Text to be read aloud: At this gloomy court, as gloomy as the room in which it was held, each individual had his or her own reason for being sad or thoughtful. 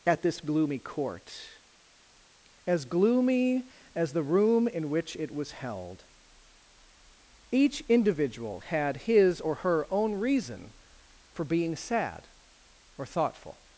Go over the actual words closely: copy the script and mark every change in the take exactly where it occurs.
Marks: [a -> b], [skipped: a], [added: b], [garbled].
At this gloomy court, as gloomy as the room in which it was held, each individual had his or her own reason for being sad or thoughtful.